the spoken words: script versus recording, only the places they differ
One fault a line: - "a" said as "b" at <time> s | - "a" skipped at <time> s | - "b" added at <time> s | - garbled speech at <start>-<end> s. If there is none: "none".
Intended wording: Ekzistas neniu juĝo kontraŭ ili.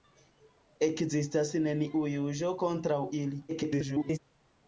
- garbled speech at 3.5-4.2 s